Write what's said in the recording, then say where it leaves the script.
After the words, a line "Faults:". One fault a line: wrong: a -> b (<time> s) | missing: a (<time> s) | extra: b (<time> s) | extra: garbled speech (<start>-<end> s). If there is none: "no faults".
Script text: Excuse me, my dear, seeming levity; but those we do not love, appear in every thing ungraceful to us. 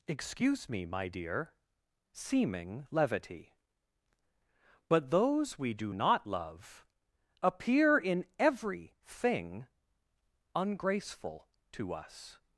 Excuse me, my dear, seeming levity; but those we do not love, appear in every thing ungraceful to us.
Faults:
no faults